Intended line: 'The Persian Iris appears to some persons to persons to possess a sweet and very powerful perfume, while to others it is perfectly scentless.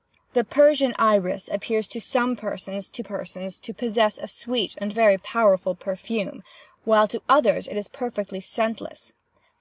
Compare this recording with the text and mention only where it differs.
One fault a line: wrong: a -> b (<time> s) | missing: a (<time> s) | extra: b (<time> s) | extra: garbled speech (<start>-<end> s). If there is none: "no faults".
no faults